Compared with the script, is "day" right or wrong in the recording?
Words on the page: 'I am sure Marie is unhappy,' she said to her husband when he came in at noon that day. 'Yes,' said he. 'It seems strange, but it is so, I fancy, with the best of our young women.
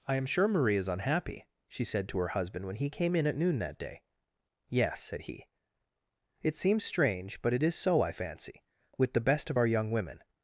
right